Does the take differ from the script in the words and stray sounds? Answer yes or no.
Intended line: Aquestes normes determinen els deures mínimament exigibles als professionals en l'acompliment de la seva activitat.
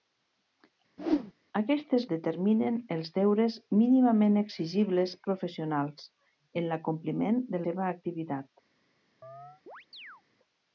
yes